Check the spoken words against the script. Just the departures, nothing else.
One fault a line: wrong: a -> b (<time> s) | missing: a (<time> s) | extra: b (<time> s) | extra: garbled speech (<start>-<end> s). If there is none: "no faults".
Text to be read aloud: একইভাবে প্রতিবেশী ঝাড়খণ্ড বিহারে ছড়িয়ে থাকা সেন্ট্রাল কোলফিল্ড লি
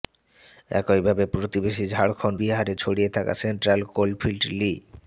no faults